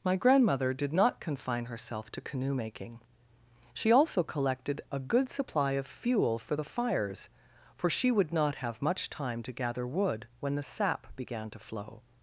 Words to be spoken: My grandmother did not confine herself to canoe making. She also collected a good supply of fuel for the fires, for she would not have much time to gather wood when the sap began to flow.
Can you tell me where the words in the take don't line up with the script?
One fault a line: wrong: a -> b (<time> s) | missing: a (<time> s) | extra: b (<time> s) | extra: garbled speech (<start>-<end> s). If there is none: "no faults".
no faults